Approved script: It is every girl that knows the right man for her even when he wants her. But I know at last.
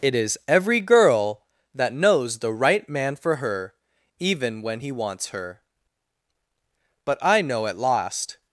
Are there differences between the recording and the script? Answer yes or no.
no